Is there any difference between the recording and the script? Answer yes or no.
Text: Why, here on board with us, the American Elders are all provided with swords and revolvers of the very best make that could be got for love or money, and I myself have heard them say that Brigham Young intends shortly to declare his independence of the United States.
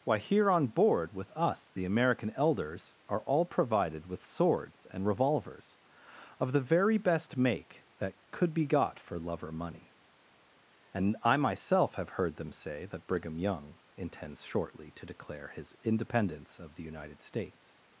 no